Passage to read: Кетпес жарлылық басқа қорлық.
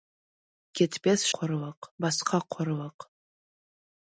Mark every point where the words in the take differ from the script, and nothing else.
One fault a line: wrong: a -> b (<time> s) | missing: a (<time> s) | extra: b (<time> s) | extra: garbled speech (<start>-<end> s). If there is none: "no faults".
wrong: жарлылық -> қорлық (1.4 s)